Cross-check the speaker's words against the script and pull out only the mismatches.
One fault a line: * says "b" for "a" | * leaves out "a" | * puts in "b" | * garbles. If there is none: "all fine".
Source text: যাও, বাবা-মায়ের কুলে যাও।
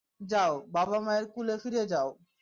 * puts in "ফিরে"